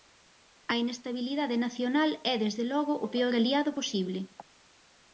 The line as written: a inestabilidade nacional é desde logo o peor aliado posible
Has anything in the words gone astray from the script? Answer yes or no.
no